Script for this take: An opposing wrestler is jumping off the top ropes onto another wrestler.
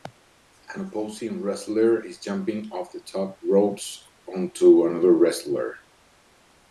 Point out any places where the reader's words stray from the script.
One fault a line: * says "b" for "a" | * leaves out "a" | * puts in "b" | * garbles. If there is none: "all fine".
all fine